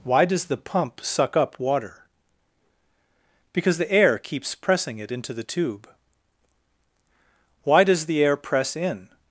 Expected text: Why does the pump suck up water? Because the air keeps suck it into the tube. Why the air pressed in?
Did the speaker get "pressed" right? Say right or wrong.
wrong